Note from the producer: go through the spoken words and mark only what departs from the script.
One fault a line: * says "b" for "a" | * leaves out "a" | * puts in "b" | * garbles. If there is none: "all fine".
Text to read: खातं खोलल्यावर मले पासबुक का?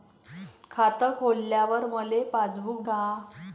all fine